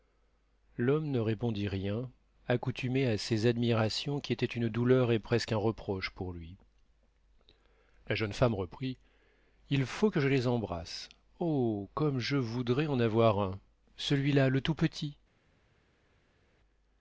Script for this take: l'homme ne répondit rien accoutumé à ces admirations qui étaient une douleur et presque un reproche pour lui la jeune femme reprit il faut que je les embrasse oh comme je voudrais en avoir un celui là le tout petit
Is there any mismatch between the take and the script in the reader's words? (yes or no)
no